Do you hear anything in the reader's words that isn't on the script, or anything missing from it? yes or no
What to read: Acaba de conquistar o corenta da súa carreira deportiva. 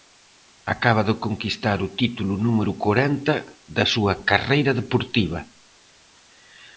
yes